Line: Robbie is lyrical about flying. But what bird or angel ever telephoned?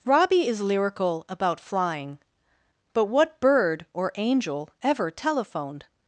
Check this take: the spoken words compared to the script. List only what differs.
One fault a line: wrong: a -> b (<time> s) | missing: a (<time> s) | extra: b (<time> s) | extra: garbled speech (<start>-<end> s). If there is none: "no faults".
no faults